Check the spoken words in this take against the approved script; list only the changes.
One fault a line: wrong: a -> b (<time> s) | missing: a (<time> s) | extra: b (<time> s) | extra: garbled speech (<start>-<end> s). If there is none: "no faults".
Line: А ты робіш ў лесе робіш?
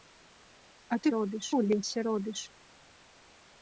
no faults